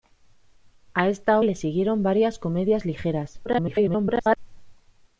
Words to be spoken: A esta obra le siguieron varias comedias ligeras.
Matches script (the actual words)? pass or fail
fail